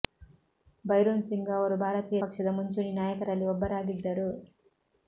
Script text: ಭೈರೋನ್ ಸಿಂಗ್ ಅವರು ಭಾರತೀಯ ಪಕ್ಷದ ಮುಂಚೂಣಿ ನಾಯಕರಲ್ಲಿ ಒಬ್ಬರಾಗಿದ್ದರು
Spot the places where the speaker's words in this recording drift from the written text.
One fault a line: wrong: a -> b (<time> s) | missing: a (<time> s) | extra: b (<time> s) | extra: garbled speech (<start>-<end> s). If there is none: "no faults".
no faults